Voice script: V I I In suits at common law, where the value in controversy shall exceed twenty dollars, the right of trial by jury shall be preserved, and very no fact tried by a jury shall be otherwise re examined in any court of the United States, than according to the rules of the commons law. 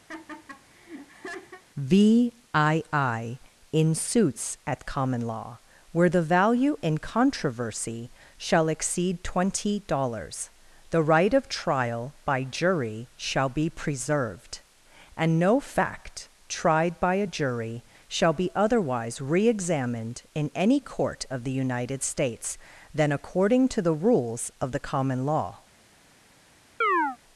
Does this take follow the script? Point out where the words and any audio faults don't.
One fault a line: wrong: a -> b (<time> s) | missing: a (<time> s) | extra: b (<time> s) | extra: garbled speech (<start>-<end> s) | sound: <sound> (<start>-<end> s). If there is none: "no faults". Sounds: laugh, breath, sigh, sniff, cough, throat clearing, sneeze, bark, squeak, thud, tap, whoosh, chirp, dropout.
sound: laugh (0.1-1.6 s)
missing: very (15.4 s)
wrong: commons -> common (24.8 s)
sound: chirp (26.8-27.2 s)